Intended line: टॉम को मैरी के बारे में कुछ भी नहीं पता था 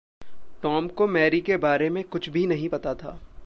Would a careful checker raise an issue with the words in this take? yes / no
no